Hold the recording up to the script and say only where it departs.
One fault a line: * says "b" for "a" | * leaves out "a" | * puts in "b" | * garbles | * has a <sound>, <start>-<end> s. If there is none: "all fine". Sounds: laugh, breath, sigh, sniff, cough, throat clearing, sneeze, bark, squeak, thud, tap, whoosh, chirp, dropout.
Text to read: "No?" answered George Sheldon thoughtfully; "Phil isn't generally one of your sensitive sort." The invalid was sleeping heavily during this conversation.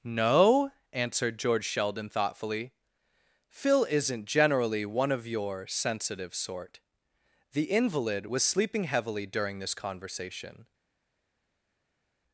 all fine